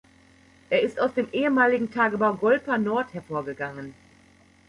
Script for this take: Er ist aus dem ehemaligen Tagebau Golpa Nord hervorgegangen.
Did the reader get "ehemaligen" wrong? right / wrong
right